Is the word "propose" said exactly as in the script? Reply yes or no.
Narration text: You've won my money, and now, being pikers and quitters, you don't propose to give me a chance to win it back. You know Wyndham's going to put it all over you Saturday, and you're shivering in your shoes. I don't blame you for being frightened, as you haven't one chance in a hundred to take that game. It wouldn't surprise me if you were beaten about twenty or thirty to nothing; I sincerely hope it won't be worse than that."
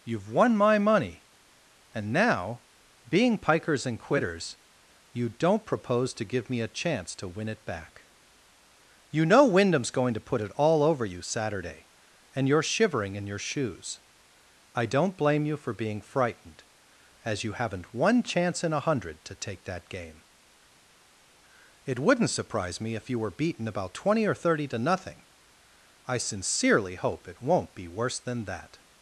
yes